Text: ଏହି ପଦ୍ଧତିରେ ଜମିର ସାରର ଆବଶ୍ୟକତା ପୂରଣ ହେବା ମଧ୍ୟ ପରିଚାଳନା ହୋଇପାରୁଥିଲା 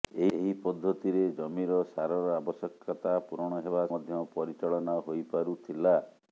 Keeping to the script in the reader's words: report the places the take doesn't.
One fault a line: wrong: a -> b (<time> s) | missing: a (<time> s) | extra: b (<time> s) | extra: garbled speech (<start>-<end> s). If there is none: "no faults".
no faults